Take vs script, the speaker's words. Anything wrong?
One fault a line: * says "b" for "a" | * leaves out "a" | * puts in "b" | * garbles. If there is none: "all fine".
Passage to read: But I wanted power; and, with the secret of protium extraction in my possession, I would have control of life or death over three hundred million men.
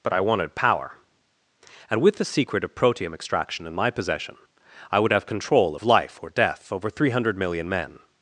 all fine